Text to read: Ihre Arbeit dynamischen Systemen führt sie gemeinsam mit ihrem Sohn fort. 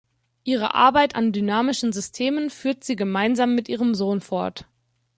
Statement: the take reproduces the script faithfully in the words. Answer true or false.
false